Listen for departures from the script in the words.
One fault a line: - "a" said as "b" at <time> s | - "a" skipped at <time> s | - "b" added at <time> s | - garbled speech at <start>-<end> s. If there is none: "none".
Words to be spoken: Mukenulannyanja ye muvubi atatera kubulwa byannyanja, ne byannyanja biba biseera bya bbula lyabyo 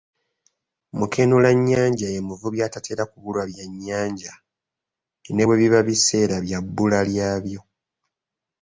- "byannyanja" said as "bwe" at 5.5 s